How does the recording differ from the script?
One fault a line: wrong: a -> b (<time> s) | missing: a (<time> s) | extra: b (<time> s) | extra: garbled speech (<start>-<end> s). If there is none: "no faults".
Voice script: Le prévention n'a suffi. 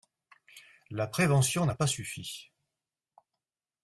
wrong: Le -> La (0.9 s)
extra: pas (1.7 s)